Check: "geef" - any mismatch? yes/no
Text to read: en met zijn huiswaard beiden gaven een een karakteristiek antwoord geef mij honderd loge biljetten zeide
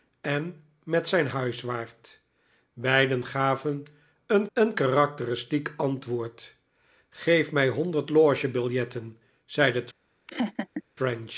no